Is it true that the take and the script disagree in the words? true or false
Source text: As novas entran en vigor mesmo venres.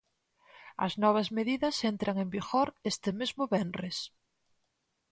true